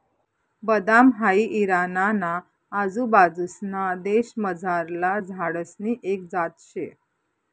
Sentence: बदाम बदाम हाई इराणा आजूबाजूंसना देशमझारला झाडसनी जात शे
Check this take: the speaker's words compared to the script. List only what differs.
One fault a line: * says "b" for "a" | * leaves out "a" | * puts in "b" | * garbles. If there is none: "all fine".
* leaves out "बदाम"
* puts in "ना"
* puts in "एक"